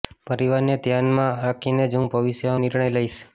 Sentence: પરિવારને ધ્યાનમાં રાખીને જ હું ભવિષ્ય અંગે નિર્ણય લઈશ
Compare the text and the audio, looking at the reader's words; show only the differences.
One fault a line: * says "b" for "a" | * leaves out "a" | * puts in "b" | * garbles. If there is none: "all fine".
* leaves out "અંગે"